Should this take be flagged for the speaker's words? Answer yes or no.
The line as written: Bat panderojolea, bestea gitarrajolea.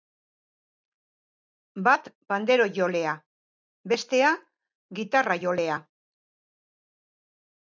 no